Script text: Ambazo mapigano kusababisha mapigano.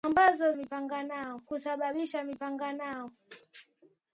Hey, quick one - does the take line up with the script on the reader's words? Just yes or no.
yes